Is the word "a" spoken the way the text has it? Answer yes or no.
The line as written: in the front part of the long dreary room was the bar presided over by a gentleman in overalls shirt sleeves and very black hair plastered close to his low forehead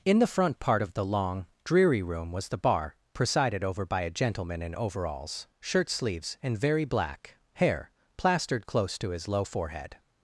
yes